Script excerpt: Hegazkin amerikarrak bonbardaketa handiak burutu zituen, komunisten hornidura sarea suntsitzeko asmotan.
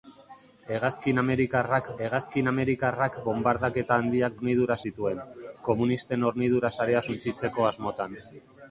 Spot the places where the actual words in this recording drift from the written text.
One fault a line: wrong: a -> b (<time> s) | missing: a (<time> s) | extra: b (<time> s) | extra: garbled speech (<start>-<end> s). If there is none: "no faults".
extra: hegazkin amerikarrak (2.0 s)
wrong: burutu -> hornidura (4.4 s)